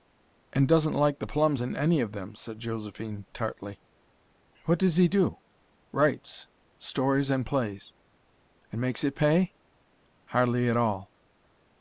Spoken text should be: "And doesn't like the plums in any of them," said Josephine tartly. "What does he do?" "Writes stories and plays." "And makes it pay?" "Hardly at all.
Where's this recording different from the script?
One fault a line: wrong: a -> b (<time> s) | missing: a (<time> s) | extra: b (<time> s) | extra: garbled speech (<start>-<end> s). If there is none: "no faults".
no faults